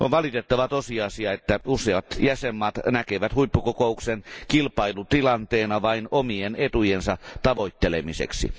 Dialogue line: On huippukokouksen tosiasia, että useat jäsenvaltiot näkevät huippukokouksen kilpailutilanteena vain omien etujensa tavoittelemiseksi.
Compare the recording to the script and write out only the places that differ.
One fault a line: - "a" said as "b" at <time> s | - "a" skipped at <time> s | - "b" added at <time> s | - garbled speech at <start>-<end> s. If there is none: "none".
- "huippukokouksen" said as "valitettava" at 0.1 s